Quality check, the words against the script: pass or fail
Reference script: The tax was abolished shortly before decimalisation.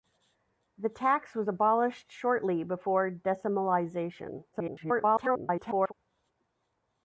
fail